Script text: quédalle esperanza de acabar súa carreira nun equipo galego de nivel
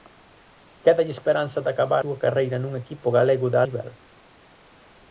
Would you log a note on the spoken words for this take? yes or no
no